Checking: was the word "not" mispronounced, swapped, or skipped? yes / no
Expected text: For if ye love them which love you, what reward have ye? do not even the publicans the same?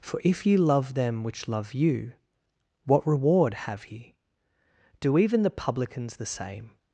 yes